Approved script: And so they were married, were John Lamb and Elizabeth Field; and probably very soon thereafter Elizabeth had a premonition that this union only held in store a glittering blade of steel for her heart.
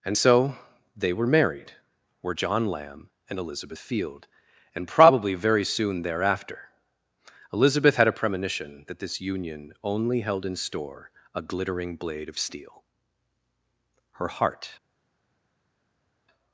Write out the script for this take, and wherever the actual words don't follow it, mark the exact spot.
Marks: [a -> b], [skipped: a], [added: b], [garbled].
And so they were married, were John Lamb and Elizabeth Field; and probably very soon thereafter Elizabeth had a premonition that this union only held in store a glittering blade of steel [skipped: for] her heart.